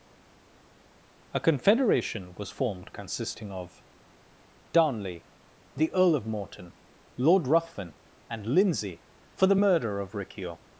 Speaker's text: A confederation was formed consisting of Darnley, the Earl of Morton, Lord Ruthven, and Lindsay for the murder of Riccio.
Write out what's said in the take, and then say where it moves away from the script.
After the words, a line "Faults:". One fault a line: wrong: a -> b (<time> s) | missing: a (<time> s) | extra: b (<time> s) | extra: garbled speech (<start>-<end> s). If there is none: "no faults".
A confederation was formed consisting of Darnley, the Earl of Morton, Lord Ruthven, and Lindsay for the murder of Riccio.
Faults:
no faults